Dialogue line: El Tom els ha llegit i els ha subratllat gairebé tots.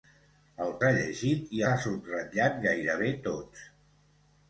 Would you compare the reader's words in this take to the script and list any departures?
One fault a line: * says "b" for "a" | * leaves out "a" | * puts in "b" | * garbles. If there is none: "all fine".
* leaves out "Tom els"
* leaves out "els"